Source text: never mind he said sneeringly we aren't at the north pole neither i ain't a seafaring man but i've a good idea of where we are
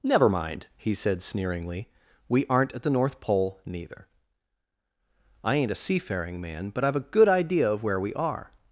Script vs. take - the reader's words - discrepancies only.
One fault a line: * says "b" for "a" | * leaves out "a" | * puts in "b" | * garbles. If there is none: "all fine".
all fine